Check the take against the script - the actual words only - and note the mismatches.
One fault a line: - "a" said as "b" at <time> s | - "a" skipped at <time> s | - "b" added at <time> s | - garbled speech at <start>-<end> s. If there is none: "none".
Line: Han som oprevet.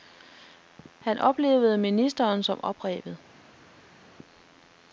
- "oplevede ministeren" added at 1.2 s